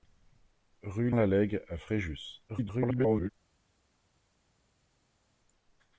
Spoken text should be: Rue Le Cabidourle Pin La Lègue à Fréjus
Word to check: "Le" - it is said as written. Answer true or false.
false